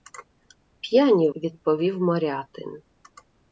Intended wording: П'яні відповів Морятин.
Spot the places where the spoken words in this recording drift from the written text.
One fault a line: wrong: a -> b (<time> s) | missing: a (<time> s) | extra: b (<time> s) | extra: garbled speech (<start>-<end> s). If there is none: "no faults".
no faults